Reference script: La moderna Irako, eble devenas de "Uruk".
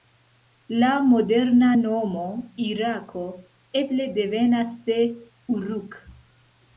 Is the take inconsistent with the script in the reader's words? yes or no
yes